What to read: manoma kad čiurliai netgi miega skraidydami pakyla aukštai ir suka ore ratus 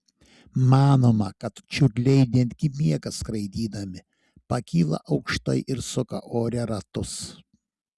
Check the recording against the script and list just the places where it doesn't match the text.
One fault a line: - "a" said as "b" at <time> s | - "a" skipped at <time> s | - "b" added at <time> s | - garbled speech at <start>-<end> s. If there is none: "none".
none